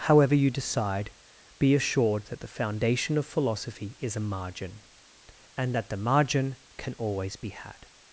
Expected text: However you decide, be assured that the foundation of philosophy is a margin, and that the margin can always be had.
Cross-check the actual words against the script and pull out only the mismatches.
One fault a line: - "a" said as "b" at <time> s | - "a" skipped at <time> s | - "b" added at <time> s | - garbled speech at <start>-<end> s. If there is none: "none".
none